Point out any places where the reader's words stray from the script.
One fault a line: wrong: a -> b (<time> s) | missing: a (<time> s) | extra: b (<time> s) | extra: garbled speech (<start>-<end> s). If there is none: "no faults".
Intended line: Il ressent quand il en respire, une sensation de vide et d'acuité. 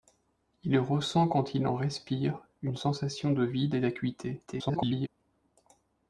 extra: garbled speech (4.5-5.1 s)